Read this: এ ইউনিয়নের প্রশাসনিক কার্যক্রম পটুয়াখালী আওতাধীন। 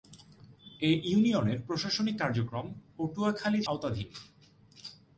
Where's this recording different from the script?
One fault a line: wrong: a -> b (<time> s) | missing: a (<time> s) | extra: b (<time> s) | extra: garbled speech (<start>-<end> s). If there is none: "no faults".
no faults